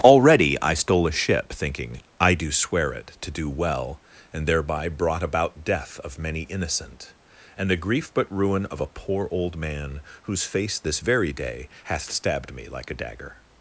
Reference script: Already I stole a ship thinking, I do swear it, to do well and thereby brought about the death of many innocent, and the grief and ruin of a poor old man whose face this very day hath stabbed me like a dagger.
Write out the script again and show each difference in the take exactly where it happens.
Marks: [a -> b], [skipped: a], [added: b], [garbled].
Already I stole a ship thinking, I do swear it, to do well and thereby brought about [skipped: the] death of many innocent, and the grief [and -> but] ruin of a poor old man whose face this very day hath stabbed me like a dagger.